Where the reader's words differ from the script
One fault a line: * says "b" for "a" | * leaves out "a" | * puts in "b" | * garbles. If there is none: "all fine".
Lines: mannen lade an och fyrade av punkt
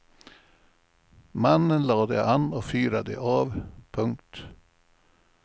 all fine